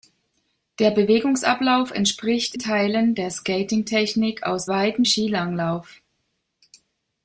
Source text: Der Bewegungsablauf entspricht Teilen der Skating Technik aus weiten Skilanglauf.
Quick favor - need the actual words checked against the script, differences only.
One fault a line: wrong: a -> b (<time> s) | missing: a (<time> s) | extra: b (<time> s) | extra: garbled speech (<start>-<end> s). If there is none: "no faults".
no faults